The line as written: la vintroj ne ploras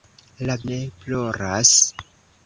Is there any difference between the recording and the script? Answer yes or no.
yes